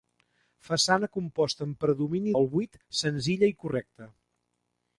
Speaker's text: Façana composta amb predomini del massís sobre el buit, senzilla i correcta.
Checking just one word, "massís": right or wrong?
wrong